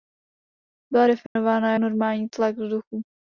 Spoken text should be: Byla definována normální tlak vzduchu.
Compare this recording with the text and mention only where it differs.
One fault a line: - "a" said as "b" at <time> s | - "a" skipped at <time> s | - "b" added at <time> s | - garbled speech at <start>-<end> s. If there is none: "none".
none